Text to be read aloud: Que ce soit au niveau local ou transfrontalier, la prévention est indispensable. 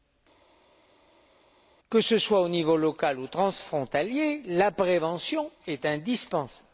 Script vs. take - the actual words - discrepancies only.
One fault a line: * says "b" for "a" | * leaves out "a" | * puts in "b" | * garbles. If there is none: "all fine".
all fine